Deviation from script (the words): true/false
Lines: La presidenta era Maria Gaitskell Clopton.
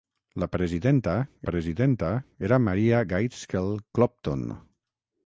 true